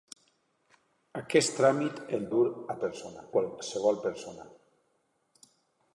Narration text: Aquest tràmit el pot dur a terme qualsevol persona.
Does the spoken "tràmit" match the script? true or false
true